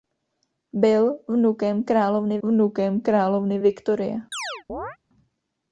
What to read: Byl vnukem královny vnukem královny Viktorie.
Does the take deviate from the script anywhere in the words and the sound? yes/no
yes